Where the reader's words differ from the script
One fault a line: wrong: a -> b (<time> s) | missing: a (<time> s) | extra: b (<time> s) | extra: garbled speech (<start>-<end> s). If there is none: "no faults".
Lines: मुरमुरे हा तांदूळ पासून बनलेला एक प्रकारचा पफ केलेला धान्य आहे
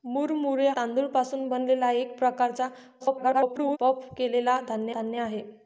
missing: हा (0.7 s)
extra: garbled speech (3.0-3.8 s)
extra: धान्य (4.9 s)